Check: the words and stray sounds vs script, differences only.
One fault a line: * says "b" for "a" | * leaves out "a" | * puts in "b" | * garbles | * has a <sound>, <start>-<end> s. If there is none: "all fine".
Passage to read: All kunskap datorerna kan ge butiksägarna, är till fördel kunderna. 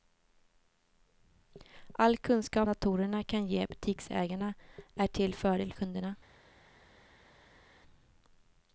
all fine